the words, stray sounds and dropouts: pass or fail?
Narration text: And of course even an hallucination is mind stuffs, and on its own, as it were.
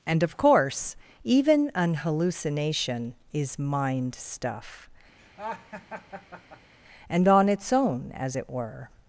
fail